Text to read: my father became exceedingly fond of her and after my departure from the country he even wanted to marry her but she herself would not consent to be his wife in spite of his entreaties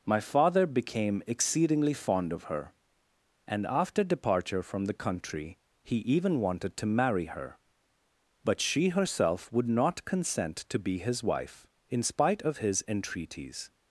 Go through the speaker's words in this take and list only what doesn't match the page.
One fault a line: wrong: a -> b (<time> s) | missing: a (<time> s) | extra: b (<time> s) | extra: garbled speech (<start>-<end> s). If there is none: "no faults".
missing: my (4.0 s)